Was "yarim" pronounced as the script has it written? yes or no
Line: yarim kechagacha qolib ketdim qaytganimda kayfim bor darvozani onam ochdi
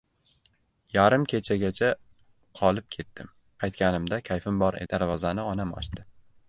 yes